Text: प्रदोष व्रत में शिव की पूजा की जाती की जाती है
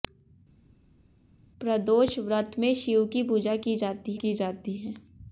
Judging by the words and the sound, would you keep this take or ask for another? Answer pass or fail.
pass